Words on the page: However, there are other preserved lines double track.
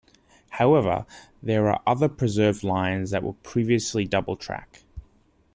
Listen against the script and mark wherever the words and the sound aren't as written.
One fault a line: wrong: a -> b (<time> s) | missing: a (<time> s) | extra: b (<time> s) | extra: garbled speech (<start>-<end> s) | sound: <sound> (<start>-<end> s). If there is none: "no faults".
extra: that were previously (3.1 s)